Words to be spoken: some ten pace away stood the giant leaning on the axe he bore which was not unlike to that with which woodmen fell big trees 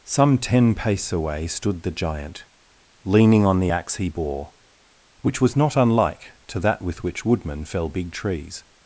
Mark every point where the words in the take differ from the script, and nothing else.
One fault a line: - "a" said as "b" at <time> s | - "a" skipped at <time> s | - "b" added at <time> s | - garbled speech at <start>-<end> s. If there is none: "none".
none